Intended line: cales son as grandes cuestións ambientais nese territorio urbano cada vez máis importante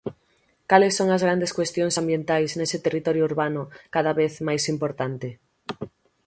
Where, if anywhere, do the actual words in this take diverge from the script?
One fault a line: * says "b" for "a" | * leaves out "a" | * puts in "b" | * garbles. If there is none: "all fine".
all fine